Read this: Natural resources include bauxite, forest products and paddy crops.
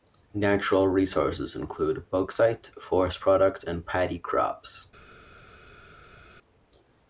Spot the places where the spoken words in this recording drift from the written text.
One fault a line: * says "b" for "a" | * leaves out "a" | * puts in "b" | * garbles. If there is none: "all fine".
all fine